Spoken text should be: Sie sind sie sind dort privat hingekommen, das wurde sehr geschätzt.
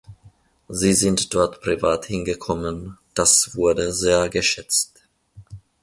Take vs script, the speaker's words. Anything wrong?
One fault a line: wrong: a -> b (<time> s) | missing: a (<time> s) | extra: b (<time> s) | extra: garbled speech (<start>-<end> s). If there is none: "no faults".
missing: sie sind (1.3 s)